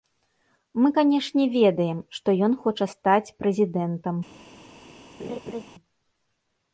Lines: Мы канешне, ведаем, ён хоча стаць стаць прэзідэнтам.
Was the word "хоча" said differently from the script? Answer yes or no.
no